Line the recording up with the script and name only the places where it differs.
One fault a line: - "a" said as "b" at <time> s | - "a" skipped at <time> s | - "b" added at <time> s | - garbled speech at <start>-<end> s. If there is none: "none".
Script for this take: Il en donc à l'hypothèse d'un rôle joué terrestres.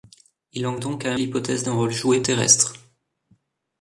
none